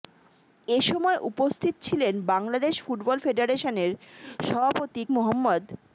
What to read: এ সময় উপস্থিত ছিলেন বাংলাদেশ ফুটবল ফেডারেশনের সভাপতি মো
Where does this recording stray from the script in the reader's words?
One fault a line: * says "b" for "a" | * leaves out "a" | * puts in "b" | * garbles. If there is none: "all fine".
all fine